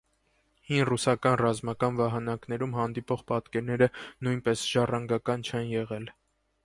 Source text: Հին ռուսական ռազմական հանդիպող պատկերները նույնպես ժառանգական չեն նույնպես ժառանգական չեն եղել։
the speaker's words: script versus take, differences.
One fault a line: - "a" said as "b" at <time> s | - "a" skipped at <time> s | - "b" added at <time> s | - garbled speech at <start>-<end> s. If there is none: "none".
- "վահանակներում" added at 2.0 s
- "նույնպես ժառանգական չեն" skipped at 5.7 s